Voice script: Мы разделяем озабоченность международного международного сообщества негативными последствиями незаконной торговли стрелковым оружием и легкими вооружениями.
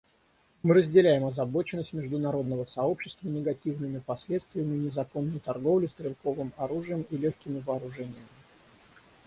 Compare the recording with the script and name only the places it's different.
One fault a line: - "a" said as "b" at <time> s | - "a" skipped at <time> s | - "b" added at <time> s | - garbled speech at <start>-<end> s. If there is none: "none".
- "международного" skipped at 2.6 s